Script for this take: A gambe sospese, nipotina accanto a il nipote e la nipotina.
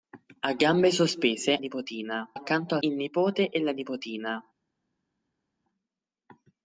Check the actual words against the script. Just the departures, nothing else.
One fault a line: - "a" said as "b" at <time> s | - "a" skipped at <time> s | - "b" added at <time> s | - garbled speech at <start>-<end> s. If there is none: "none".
none